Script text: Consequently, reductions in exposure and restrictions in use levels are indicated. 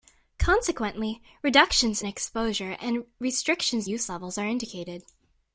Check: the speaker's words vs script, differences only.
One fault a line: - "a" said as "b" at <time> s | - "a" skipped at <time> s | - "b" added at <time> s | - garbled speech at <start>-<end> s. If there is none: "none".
- "in" skipped at 2.0 s
- "in" skipped at 3.9 s